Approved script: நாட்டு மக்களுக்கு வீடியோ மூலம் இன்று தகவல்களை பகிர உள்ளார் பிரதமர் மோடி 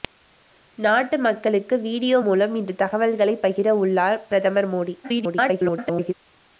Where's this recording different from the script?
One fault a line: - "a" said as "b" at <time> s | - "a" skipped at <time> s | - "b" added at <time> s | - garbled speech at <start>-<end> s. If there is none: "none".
- garbled speech at 5.0-6.1 s